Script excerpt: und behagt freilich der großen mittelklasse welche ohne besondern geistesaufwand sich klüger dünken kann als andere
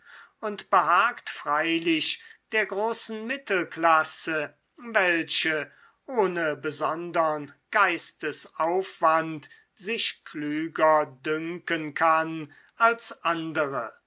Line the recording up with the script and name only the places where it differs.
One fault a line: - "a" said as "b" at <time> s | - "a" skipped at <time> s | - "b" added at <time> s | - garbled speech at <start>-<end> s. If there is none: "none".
none